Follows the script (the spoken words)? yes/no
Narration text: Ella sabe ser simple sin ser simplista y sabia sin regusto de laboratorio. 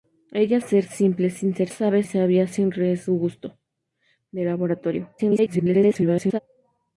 no